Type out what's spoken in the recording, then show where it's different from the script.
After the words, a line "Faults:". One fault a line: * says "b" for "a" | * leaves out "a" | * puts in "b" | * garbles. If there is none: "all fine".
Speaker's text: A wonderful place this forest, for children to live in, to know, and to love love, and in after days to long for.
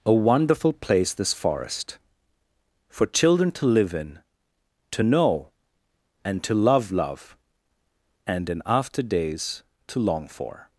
A wonderful place this forest, for children to live in, to know, and to love love, and in after days to long for.
Faults:
all fine